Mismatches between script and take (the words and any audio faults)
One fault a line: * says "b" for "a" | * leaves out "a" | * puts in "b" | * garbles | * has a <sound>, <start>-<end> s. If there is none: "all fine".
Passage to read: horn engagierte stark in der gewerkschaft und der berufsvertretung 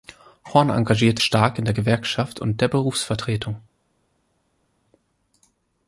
all fine